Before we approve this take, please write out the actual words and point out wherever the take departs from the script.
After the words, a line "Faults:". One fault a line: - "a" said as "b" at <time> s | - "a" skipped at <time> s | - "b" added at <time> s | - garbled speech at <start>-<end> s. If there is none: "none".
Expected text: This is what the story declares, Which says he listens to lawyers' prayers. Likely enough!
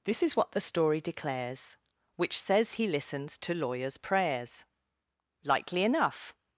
This is what the story declares, Which says he listens to lawyers' prayers. Likely enough!
Faults:
none